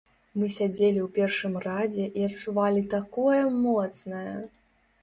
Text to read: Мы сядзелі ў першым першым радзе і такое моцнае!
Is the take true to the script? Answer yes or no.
no